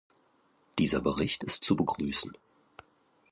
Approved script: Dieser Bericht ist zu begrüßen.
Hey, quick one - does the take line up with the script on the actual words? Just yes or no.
yes